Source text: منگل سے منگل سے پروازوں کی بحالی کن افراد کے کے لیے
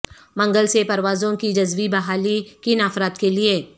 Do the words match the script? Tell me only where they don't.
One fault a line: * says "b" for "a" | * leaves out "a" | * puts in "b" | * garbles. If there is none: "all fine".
* leaves out "منگل سے"
* puts in "جزوی"
* leaves out "کے"